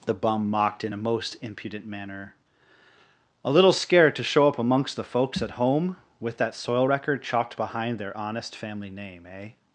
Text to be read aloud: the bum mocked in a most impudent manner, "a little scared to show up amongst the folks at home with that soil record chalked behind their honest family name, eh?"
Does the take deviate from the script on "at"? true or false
false